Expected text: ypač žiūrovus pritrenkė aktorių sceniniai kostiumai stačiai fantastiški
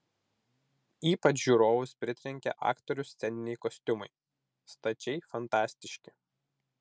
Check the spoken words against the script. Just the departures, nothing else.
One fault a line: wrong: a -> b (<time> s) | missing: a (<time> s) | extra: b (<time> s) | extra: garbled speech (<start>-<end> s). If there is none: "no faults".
no faults